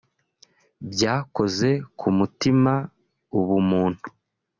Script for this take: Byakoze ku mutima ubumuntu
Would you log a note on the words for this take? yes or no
no